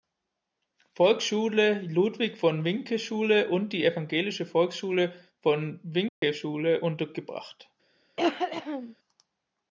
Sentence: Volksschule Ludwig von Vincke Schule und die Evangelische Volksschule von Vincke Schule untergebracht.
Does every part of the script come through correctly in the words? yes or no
yes